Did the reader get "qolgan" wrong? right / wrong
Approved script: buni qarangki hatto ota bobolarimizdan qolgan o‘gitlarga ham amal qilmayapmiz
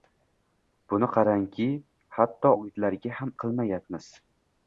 wrong